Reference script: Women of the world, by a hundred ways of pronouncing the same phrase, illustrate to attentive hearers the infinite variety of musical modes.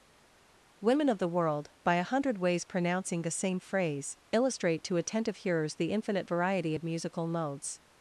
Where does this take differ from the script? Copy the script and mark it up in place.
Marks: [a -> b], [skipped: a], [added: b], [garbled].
Women of the world, by a hundred ways [skipped: of] pronouncing the same phrase, illustrate to attentive hearers the infinite variety of musical modes.